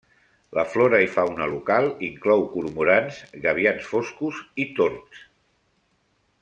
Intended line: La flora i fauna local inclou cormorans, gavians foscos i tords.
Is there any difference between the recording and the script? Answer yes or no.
no